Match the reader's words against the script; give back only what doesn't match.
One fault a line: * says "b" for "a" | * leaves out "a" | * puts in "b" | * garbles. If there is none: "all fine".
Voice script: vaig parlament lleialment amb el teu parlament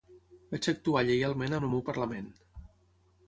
* says "actuar" for "parlament"
* says "meu" for "teu"